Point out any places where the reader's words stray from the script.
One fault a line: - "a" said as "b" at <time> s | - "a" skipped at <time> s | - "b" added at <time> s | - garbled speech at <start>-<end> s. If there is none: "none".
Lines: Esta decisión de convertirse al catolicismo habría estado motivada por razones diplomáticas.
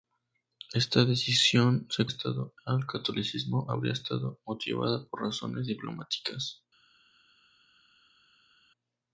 - "convertirse" said as "estado" at 2.1 s